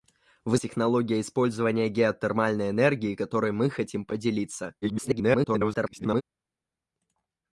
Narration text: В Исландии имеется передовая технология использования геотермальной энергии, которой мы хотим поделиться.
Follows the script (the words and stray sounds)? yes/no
no